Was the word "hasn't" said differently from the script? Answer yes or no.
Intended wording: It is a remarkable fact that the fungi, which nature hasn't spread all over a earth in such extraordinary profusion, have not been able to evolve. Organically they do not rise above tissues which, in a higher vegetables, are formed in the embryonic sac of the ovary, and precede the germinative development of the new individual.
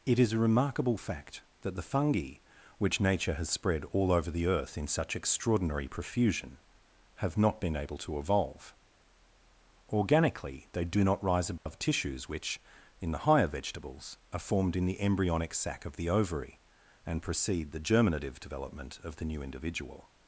yes